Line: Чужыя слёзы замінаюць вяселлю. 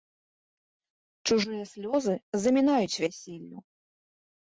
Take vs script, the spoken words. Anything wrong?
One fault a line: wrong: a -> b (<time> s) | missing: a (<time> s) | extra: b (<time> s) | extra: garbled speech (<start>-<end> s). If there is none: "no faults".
no faults